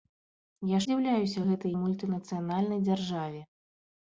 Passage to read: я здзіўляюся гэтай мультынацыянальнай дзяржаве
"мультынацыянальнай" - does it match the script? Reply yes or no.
yes